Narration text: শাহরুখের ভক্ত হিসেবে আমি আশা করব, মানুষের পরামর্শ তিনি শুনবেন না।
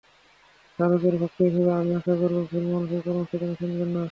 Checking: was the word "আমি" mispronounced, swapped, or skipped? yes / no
no